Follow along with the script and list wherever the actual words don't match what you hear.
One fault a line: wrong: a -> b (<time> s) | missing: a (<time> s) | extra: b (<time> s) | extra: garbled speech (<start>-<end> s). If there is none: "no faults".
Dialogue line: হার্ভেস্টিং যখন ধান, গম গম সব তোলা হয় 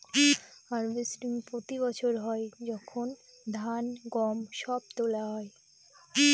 extra: প্রতি বছর হয় (1.5 s)
missing: গম (4.4 s)